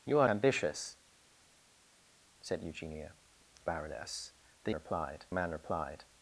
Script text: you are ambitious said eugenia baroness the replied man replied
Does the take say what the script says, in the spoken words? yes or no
yes